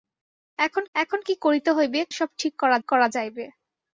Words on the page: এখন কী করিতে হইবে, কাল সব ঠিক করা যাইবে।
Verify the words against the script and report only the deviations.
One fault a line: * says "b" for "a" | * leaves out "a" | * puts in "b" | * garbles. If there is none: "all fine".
* puts in "এখন"
* leaves out "কাল"
* puts in "করা"